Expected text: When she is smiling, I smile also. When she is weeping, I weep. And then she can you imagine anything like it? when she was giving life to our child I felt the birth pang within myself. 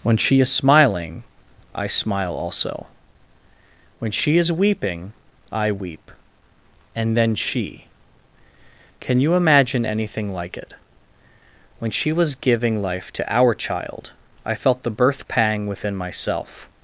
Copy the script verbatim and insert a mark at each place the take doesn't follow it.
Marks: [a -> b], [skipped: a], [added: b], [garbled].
When she is smiling, I smile also. When she is weeping, I weep. And then she can you imagine anything like it? when she was giving life to our child I felt the birth pang within myself.